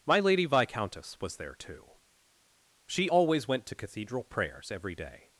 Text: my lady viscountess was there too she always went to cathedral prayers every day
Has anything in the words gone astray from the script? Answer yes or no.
no